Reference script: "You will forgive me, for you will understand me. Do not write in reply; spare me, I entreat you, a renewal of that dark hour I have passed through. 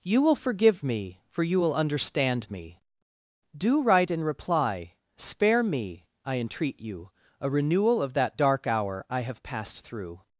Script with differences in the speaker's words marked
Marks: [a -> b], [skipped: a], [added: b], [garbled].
"You will forgive me, for you will understand me. Do [skipped: not] write in reply; spare me, I entreat you, a renewal of that dark hour I have passed through.